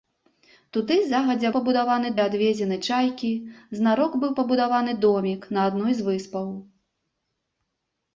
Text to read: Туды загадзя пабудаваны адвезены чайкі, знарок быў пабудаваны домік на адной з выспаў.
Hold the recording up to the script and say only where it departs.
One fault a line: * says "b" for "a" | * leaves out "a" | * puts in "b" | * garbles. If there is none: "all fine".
all fine